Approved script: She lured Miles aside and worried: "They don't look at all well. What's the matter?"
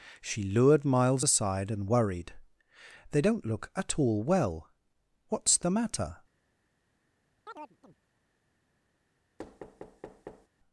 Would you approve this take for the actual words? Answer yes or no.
yes